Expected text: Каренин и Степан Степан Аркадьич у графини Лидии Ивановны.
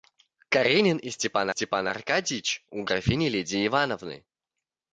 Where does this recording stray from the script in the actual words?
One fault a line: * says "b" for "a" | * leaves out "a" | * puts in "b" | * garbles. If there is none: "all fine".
all fine